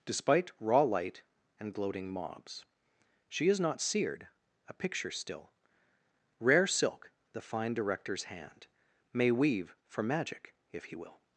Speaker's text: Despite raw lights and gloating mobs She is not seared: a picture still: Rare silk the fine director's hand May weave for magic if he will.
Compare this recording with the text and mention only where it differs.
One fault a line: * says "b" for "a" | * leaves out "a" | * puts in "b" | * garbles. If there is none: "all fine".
* says "light" for "lights"